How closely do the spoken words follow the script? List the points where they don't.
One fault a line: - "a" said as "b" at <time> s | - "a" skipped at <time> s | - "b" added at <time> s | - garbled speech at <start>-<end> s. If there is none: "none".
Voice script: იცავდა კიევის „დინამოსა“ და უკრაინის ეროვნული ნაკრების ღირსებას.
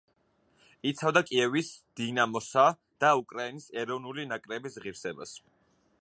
none